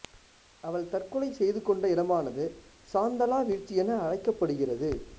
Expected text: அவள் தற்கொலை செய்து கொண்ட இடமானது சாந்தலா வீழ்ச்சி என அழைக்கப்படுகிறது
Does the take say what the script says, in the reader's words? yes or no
yes